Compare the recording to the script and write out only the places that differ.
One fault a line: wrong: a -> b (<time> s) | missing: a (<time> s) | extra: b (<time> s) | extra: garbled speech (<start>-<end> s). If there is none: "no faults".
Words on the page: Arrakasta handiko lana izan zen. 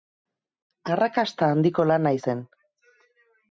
missing: izan (2.1 s)